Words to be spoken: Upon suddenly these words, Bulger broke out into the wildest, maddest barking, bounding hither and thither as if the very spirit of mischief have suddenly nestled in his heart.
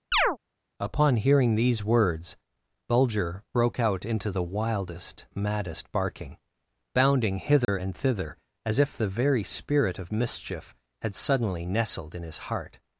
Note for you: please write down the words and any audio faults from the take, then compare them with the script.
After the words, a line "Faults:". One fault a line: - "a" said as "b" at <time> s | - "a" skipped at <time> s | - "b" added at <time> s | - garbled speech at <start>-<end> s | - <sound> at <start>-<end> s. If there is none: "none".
Upon hearing these words, Bulger broke out into the wildest, maddest barking, bounding hither and thither as if the very spirit of mischief had suddenly nestled in his heart.
Faults:
- chirp at 0.1-0.4 s
- "suddenly" said as "hearing" at 1.1 s
- dropout at 7.6-7.7 s
- "have" said as "had" at 11.0 s